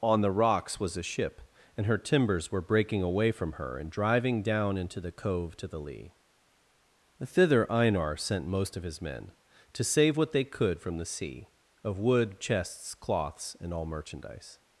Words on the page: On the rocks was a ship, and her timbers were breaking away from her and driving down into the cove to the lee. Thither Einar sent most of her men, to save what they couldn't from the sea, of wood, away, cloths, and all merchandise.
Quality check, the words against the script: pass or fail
fail